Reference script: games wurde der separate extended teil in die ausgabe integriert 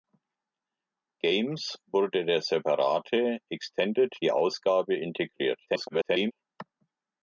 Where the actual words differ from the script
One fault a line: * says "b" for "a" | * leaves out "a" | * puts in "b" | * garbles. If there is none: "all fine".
* leaves out "teil in"
* garbles